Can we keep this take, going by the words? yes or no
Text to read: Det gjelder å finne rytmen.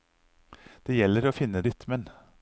yes